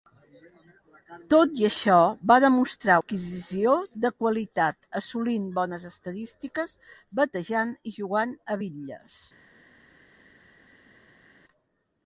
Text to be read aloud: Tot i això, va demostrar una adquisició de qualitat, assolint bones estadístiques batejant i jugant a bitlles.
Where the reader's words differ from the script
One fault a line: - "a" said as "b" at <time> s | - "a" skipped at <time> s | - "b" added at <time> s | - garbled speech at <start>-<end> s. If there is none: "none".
- "una" skipped at 3.0 s